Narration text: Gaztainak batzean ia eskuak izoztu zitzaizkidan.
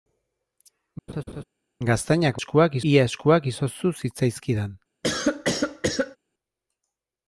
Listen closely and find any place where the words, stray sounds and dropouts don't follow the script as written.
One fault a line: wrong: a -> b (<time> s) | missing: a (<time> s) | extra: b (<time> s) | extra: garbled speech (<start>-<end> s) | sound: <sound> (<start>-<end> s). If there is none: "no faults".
sound: laugh (1.1-1.4 s)
wrong: batzean -> eskuak (2.4 s)
sound: cough (5.0-6.2 s)